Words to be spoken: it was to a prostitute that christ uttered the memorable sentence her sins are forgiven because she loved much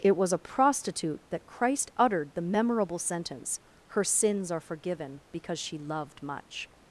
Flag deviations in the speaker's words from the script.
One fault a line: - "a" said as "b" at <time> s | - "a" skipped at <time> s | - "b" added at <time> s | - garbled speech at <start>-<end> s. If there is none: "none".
- "to" skipped at 0.3 s